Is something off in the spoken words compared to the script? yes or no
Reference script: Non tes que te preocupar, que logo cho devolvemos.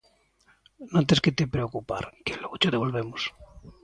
no